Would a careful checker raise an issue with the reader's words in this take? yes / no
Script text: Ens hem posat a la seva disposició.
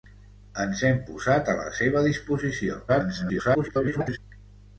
yes